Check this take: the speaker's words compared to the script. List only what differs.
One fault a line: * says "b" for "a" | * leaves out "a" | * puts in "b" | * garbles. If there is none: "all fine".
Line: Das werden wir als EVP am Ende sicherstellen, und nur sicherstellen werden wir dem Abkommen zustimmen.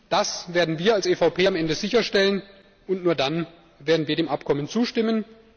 * says "dann" for "sicherstellen"